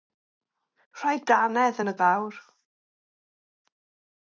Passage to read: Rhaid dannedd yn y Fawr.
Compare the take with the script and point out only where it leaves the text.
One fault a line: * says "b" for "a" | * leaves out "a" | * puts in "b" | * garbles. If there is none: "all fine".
all fine